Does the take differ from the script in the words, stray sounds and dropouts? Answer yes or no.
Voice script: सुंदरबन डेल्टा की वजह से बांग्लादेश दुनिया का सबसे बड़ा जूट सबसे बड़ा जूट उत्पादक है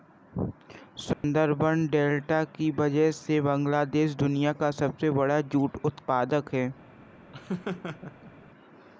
yes